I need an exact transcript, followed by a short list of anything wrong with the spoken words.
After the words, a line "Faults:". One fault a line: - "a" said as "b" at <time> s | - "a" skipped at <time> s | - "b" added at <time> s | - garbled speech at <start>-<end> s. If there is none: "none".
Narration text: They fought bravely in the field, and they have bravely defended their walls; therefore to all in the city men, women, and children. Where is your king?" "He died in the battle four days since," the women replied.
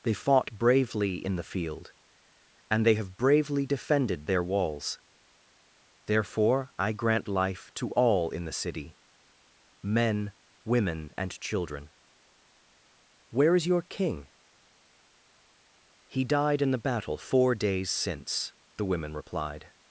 They fought bravely in the field, and they have bravely defended their walls; therefore I grant life to all in the city men, women, and children. Where is your king?" "He died in the battle four days since," the women replied.
Faults:
- "I grant life" added at 6.8 s